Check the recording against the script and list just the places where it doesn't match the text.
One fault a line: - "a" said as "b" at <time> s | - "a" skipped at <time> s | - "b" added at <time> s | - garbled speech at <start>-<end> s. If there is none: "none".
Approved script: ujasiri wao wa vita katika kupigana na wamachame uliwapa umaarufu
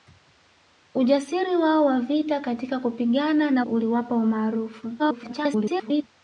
- "wamachame" skipped at 3.6 s
- garbled speech at 5.0-6.0 s